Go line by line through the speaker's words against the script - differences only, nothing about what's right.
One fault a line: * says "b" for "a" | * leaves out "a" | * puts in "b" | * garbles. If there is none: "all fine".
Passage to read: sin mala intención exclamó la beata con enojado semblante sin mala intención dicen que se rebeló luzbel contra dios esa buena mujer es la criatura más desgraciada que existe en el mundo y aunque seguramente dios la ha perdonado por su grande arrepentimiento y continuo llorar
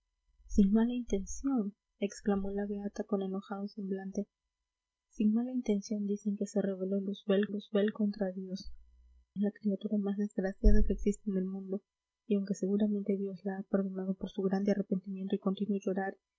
* puts in "luzbel"
* leaves out "esa buena mujer"